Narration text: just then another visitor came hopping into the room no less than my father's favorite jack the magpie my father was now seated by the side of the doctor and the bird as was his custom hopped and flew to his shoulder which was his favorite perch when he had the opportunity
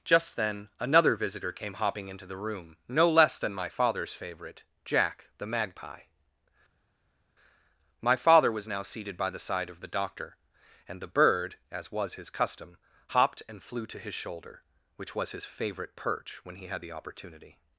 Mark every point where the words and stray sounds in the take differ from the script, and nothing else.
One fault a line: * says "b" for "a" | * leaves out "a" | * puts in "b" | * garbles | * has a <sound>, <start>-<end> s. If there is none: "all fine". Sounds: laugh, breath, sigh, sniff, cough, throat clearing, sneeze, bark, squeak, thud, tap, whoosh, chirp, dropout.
all fine